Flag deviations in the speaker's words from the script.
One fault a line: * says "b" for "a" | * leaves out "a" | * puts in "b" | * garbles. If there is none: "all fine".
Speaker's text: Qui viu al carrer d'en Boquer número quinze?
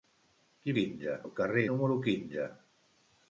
* says "quinze" for "viu"
* leaves out "d'en Boquer"